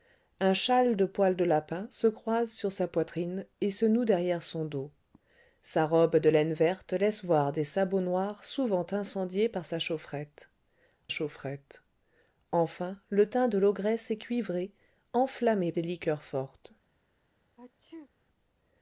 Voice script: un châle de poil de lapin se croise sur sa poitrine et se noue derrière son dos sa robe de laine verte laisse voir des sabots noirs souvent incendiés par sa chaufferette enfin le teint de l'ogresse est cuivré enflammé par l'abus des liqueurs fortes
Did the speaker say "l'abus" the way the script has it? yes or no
no